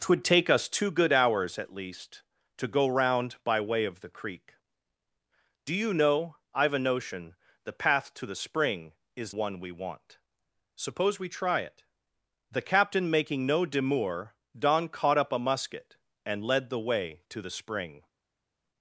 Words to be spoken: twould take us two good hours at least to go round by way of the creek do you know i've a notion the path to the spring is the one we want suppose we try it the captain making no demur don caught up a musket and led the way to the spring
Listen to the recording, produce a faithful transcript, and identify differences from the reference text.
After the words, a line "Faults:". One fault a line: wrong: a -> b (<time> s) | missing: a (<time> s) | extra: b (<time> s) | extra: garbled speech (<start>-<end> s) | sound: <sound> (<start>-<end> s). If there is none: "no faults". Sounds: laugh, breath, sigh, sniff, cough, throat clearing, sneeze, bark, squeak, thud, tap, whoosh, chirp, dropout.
twould take us two good hours at least to go round by way of the creek do you know i've a notion the path to the spring is one we want suppose we try it the captain making no demur don caught up a musket and led the way to the spring
Faults:
missing: the (9.3 s)